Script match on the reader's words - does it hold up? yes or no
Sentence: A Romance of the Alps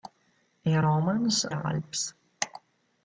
no